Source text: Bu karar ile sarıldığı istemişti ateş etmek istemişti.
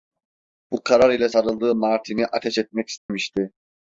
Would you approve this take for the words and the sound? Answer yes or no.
no